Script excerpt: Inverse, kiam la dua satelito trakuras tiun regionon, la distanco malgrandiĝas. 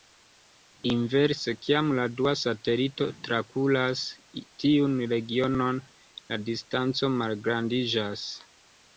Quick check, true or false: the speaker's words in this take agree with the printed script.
true